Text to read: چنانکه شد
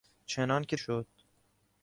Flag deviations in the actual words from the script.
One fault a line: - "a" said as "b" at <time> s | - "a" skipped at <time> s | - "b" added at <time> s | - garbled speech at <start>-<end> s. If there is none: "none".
none